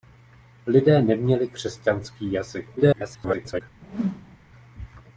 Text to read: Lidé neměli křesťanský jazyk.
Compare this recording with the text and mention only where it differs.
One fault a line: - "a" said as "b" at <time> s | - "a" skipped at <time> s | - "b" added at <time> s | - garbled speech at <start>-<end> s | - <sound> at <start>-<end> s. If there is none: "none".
- garbled speech at 2.8-3.6 s
- whoosh at 3.8-4.4 s